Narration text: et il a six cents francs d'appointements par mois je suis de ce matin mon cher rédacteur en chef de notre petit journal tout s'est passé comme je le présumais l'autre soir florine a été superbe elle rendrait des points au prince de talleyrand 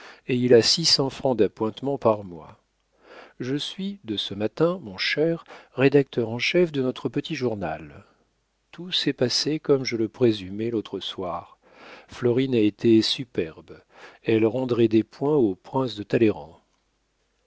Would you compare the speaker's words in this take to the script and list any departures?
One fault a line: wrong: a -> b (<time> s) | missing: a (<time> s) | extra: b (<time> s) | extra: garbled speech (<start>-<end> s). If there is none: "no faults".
no faults